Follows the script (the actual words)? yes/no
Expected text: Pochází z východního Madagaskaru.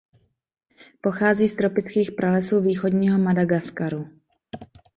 no